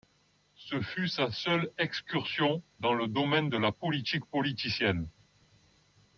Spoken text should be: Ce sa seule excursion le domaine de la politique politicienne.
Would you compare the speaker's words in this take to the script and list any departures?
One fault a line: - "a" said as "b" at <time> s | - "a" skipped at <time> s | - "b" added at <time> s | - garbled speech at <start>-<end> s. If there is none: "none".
- "fut" added at 0.8 s
- "dans" added at 2.8 s